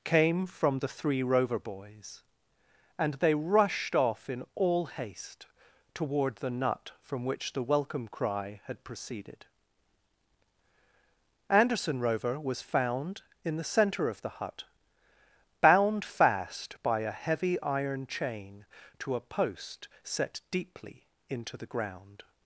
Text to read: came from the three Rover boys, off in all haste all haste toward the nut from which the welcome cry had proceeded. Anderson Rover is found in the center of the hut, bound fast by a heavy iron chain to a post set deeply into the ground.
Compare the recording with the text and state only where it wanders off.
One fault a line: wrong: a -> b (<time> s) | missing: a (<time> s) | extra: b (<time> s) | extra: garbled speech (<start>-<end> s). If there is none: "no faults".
extra: and they rushed (3.0 s)
missing: all haste (5.5 s)
wrong: is -> was (12.4 s)